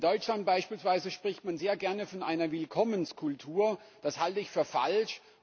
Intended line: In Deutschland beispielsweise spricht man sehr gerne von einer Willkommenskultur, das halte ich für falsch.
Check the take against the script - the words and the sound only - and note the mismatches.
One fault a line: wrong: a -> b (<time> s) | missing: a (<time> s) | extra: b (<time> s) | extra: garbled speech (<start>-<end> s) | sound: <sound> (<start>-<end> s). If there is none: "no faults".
no faults